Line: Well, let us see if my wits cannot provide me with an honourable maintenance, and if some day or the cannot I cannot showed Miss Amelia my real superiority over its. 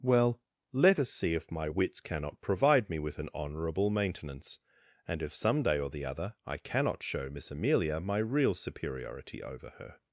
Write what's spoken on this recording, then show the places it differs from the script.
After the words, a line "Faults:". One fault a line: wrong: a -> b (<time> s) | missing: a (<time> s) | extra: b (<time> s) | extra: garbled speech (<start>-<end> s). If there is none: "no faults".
Well, let us see if my wits cannot provide me with an honourable maintenance, and if some day or the other I cannot show Miss Amelia my real superiority over her.
Faults:
wrong: cannot -> other (6.0 s)
wrong: showed -> show (7.0 s)
wrong: its -> her (9.8 s)